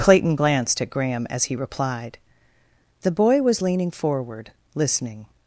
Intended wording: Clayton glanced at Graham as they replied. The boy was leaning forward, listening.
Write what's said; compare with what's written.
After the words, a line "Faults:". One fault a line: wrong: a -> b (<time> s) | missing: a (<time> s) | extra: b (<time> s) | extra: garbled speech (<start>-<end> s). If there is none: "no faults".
Clayton glanced at Graham as he replied. The boy was leaning forward, listening.
Faults:
wrong: they -> he (1.4 s)